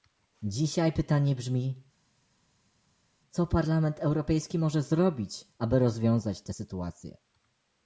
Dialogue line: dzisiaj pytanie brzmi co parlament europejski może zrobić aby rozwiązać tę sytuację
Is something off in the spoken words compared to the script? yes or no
no